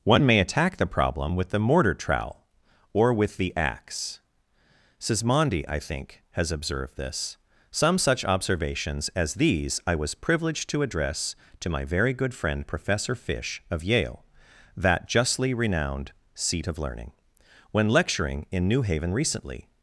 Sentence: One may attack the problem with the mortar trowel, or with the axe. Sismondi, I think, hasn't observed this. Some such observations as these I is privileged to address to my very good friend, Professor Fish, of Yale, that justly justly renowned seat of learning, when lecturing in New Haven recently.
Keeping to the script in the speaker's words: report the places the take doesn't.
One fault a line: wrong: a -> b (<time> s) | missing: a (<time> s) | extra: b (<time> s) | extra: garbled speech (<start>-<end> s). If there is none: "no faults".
wrong: hasn't -> has (6.3 s)
wrong: is -> was (9.9 s)
missing: justly (15.5 s)